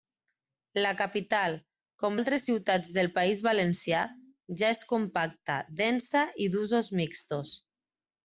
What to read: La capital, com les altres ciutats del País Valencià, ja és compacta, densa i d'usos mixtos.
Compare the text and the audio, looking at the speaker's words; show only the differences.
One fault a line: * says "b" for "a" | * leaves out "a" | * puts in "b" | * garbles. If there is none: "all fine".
* leaves out "les"